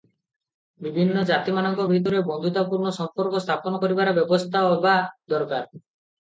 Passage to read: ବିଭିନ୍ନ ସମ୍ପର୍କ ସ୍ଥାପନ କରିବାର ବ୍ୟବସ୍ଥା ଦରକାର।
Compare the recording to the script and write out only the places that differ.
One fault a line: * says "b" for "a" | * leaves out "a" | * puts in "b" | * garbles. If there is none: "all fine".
* puts in "ଜାତିମାନଙ୍କ ଭିତରେ ବନ୍ଧୁତାପୂର୍ଣ୍ଣ"
* puts in "ହେବା"